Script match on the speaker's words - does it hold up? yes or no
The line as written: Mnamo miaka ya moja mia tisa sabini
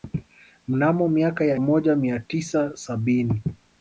yes